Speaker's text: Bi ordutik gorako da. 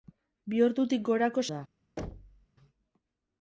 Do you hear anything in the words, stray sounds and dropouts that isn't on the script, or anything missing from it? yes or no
yes